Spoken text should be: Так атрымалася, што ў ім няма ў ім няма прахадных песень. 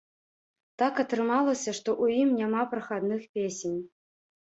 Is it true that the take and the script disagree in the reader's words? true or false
true